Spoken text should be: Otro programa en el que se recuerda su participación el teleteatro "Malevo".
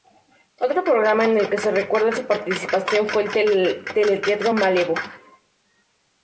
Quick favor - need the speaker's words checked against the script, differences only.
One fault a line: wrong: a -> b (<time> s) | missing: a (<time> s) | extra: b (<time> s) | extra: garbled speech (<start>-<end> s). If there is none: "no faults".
extra: fue (3.1 s)